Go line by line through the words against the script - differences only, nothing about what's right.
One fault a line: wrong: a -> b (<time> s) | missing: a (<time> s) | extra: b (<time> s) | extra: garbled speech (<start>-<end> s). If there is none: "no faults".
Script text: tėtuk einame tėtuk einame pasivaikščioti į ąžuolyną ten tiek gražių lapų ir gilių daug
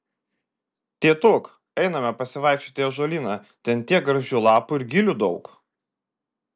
missing: tėtuk einame (2.1 s)